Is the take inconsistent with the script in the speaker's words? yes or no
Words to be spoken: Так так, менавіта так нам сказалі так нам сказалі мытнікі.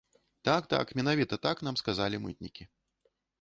yes